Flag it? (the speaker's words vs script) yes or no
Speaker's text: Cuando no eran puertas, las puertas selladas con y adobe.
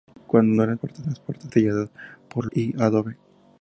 no